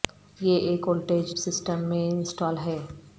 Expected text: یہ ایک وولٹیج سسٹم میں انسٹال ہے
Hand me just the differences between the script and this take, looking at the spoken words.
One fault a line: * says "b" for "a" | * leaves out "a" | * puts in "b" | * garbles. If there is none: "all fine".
all fine